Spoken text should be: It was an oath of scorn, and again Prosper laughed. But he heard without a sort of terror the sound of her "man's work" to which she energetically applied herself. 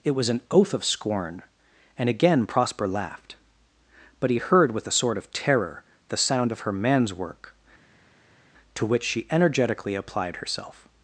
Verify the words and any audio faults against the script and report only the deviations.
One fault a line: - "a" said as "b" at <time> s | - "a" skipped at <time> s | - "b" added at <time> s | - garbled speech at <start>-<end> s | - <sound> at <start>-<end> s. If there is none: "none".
- "without" said as "with" at 4.7 s